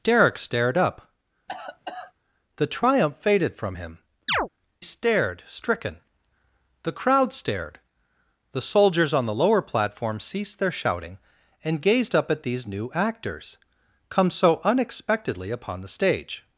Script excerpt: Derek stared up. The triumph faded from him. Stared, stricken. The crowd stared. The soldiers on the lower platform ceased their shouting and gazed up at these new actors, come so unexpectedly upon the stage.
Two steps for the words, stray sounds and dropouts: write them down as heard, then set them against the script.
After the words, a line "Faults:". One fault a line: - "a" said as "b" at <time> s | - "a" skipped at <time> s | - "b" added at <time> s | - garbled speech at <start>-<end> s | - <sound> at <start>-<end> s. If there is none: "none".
Derek stared up. The triumph faded from him. Stared, stricken. The crowd stared. The soldiers on the lower platform ceased their shouting and gazed up at these new actors, come so unexpectedly upon the stage.
Faults:
- cough at 1.5-2.1 s
- chirp at 4.3-4.5 s